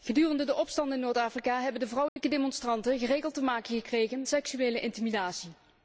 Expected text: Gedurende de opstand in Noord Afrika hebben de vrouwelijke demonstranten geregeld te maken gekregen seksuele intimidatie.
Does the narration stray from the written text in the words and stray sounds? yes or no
yes